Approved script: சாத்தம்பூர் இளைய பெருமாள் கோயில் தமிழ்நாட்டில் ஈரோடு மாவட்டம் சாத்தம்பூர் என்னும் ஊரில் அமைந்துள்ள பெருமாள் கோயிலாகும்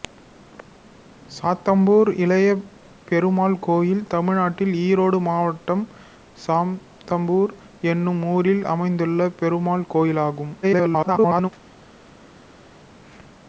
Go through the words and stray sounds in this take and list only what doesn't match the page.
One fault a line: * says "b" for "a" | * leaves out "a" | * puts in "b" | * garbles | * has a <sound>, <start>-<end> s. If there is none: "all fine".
* garbles